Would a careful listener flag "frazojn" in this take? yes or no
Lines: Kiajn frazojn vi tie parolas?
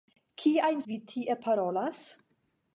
yes